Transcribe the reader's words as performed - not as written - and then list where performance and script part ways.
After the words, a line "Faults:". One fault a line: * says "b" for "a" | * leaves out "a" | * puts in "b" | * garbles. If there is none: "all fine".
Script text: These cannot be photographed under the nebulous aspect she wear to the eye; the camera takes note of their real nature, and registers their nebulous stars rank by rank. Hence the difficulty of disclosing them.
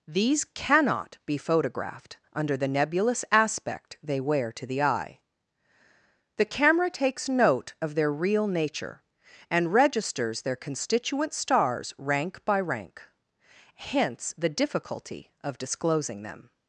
These cannot be photographed under the nebulous aspect they wear to the eye; the camera takes note of their real nature, and registers their constituent stars rank by rank. Hence the difficulty of disclosing them.
Faults:
* says "they" for "she"
* says "constituent" for "nebulous"